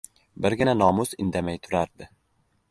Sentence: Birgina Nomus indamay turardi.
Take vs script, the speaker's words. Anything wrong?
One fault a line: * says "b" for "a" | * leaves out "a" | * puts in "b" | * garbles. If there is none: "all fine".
all fine